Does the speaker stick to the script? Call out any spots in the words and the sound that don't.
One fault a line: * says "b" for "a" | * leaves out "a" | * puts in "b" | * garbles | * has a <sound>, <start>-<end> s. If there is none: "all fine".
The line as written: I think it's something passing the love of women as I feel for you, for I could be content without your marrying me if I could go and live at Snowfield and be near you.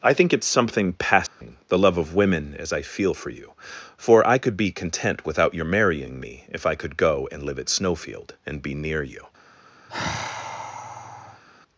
* has a dropout, 1.3-1.4 s
* has a sigh, 9.9-11.4 s